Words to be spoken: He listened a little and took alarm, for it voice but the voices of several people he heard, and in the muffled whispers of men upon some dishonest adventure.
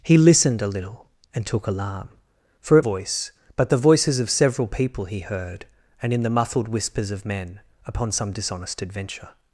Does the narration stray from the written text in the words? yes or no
no